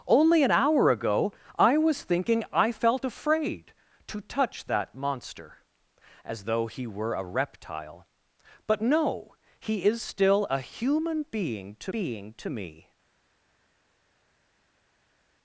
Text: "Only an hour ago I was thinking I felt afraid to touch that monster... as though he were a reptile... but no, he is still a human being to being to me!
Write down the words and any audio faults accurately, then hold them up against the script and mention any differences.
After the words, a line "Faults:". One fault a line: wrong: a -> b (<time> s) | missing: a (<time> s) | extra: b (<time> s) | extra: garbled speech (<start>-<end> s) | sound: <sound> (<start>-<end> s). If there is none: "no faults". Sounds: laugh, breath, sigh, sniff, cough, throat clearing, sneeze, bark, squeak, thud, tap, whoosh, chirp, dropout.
"Only an hour ago I was thinking I felt afraid to touch that monster... as though he were a reptile... but no, he is still a human being to being to me!
Faults:
no faults